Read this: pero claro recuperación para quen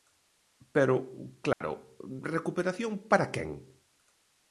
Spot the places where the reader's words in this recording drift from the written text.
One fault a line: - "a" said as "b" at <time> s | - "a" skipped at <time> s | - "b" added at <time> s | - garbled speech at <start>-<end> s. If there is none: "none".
none